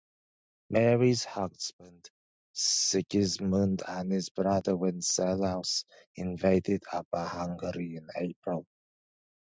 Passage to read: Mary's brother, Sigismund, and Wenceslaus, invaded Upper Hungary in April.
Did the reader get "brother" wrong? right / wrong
wrong